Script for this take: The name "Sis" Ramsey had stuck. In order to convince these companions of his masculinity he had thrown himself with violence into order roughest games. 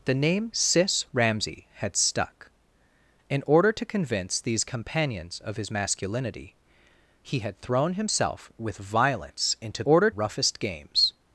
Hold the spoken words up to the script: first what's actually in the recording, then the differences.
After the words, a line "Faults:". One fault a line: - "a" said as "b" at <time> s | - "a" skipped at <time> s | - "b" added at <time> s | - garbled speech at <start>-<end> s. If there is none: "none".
The name "Sis" Ramsey had stuck. In order to convince these companions of his masculinity he had thrown himself with violence into order roughest games.
Faults:
none